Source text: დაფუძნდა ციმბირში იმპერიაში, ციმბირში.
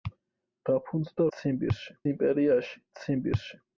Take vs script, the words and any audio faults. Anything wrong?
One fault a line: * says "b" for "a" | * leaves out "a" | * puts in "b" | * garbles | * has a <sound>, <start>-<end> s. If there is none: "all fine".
all fine